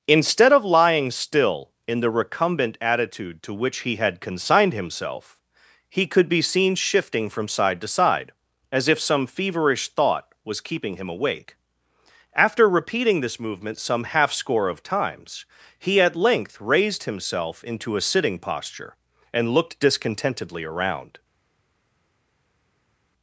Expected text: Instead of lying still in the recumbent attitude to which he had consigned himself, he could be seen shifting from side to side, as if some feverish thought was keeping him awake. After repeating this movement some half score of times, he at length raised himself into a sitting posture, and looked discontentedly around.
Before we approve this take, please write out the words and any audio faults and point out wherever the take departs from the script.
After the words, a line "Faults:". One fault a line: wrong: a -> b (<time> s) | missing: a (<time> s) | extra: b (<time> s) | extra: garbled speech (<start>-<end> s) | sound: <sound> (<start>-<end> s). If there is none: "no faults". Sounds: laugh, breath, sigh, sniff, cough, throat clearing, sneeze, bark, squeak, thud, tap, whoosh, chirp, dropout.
Instead of lying still in the recumbent attitude to which he had consigned himself, he could be seen shifting from side to side, as if some feverish thought was keeping him awake. After repeating this movement some half score of times, he at length raised himself into a sitting posture, and looked discontentedly around.
Faults:
no faults